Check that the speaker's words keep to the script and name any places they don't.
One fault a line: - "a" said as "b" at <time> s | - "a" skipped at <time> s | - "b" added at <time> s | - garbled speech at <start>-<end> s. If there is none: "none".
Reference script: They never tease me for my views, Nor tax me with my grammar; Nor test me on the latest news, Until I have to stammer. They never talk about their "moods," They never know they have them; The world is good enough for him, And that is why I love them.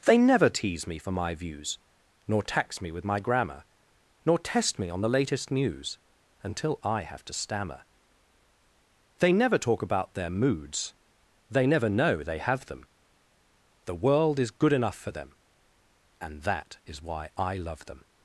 - "him" said as "them" at 15.1 s